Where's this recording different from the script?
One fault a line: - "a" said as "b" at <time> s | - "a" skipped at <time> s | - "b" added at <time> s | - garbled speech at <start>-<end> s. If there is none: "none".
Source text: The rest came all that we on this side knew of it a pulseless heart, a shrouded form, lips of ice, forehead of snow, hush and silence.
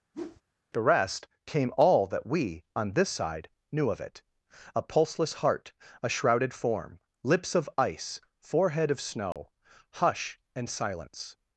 none